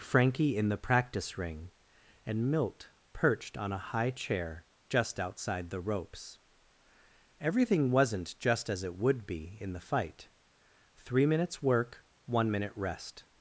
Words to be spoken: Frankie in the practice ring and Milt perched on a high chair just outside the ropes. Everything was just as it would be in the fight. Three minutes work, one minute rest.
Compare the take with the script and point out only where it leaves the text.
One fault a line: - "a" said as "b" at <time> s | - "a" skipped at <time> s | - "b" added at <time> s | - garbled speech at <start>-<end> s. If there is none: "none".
- "was" said as "wasn't" at 7.9 s